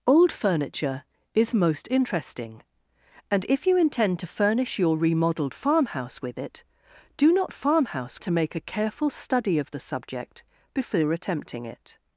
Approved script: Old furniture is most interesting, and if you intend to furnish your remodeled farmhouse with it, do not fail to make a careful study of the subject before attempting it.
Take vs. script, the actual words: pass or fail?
fail